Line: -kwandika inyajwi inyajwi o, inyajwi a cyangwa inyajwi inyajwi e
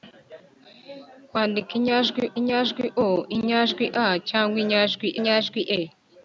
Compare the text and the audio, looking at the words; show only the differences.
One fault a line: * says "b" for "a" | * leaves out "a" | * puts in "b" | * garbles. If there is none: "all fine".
all fine